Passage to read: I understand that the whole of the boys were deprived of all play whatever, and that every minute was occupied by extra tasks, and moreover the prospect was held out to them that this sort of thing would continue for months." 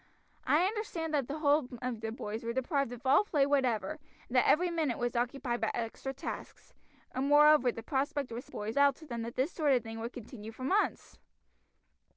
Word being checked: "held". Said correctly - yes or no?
no